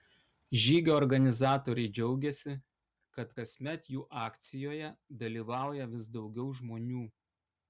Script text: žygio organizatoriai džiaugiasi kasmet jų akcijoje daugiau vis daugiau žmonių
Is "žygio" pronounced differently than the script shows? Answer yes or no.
no